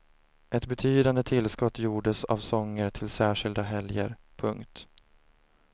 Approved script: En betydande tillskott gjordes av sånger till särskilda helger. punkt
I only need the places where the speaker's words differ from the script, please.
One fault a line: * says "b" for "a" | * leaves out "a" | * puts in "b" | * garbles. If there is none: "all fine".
* says "Ett" for "En"